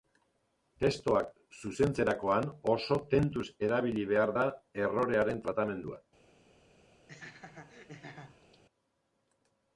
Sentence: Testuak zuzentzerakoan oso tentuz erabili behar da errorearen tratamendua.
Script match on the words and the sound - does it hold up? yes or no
no